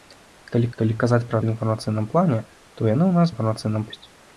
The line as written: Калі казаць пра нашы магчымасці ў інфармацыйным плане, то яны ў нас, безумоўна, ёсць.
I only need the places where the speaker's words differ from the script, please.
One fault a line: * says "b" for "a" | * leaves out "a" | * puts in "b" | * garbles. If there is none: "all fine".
* puts in "калі"
* leaves out "нашы магчымасці"
* says "інфармацыйным" for "безумоўна"